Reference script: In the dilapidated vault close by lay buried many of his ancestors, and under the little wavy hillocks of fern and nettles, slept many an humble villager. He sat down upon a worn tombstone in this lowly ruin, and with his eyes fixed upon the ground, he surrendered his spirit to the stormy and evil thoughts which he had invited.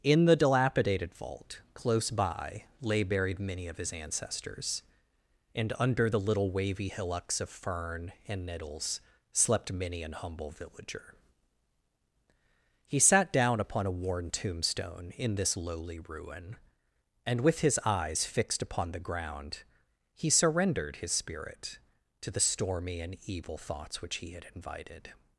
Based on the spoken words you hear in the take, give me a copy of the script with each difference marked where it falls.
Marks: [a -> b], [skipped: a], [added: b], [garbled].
In the dilapidated vault close by lay buried many of his ancestors, and under the little wavy hillocks of fern and nettles, slept many an humble villager. He sat down upon a worn tombstone in this lowly ruin, and with his eyes fixed upon the ground, he surrendered his spirit to the stormy and evil thoughts which he had invited.